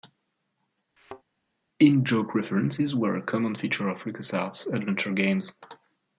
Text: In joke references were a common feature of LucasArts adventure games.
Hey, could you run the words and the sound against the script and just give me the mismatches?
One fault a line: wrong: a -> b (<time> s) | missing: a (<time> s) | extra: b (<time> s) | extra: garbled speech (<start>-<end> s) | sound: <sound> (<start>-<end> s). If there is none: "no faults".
sound: thud (1.0-1.2 s)